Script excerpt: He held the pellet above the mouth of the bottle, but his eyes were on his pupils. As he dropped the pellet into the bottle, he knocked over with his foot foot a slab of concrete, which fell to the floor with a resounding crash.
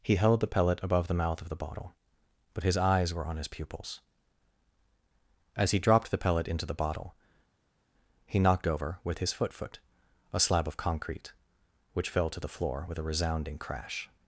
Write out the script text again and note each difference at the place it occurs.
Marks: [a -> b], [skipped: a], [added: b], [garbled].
He held the pellet above the mouth of the bottle, but his eyes were on his pupils. As he dropped the pellet into the bottle, he knocked over with his foot foot a slab of concrete, which fell to the floor with a resounding crash.